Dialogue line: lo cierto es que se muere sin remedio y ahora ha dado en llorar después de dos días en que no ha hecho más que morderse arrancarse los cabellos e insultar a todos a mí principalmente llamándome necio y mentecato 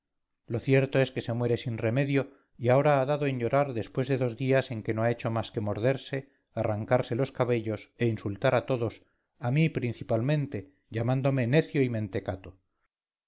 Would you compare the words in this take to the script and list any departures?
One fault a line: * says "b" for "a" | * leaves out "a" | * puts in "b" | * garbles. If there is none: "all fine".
all fine